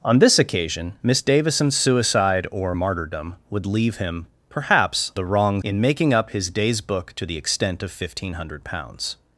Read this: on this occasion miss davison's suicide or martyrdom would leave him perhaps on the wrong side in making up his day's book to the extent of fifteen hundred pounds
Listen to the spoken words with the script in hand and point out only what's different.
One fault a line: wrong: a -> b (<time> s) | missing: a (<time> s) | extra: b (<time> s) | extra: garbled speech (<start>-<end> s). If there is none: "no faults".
missing: on (5.1 s)
missing: side (5.6 s)